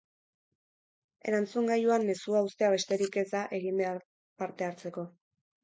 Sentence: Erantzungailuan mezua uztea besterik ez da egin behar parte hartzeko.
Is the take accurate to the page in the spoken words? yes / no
yes